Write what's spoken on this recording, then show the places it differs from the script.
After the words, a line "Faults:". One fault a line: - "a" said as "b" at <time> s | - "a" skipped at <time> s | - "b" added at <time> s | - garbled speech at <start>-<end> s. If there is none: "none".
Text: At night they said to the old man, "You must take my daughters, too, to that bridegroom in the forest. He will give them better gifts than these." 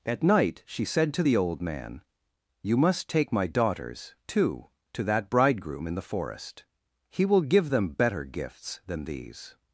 At night she said to the old man, "You must take my daughters, too, to that bridegroom in the forest. He will give them better gifts than these."
Faults:
- "they" said as "she" at 0.7 s